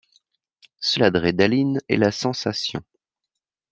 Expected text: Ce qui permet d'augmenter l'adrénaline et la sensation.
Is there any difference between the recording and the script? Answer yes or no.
yes